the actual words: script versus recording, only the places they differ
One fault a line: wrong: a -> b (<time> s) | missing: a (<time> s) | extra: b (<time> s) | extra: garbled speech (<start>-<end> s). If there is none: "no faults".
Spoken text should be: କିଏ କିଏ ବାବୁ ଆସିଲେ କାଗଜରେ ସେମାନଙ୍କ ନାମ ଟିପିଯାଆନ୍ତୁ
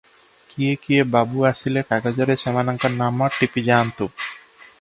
no faults